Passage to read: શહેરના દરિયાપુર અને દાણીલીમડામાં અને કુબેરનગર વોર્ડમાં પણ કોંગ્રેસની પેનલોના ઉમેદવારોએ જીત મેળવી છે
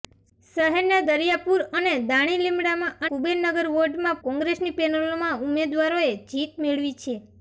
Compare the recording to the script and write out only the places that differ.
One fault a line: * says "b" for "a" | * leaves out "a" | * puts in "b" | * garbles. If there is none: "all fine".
* leaves out "અને"
* leaves out "પણ"